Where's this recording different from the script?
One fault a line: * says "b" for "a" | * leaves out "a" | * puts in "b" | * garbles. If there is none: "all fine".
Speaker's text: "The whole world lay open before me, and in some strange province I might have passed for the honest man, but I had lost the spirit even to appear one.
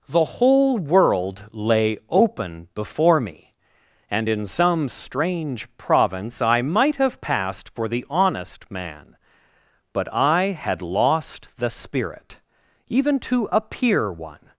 all fine